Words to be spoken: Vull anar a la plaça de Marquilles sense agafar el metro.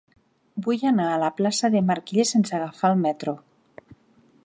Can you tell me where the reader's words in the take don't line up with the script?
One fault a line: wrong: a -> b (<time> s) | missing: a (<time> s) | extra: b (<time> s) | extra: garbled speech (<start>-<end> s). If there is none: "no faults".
no faults